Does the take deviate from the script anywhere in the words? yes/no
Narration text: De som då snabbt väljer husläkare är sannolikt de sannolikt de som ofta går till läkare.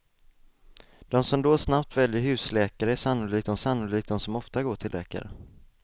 no